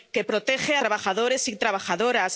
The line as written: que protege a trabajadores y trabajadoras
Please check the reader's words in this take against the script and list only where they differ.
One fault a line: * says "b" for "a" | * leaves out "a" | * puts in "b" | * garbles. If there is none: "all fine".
all fine